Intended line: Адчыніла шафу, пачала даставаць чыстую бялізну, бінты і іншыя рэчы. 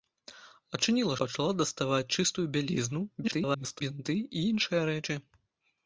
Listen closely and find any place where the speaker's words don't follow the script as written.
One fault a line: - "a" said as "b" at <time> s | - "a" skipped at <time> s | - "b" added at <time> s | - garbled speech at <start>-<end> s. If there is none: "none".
- "шафу" skipped at 1.2 s
- garbled speech at 3.2-3.8 s